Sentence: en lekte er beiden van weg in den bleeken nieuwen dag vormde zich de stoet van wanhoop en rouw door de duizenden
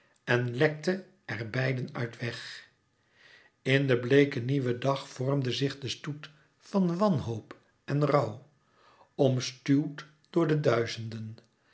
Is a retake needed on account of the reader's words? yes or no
yes